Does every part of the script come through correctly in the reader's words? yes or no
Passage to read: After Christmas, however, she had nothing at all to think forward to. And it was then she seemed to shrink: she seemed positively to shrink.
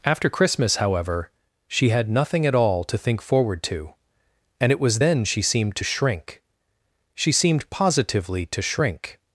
yes